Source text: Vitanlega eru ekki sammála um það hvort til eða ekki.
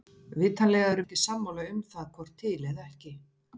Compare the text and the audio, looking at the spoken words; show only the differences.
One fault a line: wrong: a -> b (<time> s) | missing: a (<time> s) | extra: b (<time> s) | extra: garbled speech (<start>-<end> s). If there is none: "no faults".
no faults